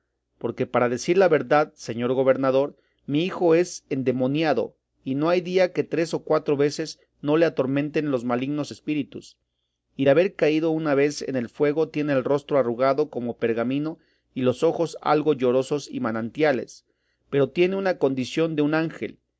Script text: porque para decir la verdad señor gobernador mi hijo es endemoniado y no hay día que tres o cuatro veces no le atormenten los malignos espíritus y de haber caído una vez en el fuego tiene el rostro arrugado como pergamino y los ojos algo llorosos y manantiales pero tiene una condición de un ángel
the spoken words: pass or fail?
pass